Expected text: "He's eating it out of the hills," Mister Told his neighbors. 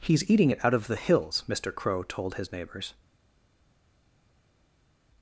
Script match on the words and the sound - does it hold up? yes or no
no